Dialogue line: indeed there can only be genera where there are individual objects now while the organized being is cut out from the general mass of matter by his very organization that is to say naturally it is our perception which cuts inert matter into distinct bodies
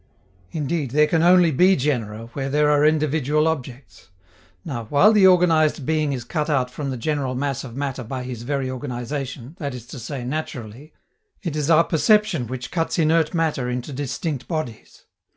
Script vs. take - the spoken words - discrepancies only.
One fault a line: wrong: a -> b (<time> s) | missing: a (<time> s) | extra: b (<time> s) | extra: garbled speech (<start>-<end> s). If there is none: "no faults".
no faults